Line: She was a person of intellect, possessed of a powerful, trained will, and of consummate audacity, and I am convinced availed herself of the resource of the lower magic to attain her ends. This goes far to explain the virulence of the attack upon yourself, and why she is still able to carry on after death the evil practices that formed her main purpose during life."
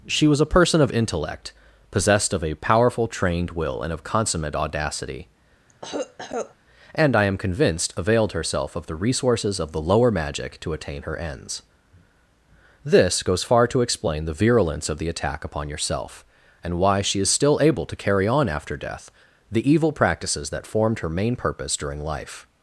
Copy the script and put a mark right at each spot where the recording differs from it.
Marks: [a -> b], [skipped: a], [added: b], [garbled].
She was a person of intellect, possessed of a powerful, trained will, and of consummate audacity, and I am convinced availed herself of the [resource -> resources] of the lower magic to attain her ends. This goes far to explain the virulence of the attack upon yourself, and why she is still able to carry on after death the evil practices that formed her main purpose during life."